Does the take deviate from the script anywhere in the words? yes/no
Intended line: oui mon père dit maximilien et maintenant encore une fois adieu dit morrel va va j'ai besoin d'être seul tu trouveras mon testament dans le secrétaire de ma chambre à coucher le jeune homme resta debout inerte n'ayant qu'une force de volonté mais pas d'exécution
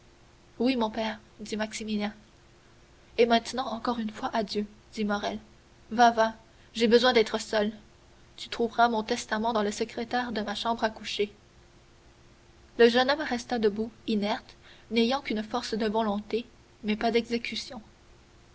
no